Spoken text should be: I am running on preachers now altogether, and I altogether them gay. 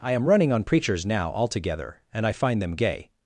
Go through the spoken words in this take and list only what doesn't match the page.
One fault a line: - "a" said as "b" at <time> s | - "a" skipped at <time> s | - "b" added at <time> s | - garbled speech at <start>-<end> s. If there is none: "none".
- "altogether" said as "find" at 2.3 s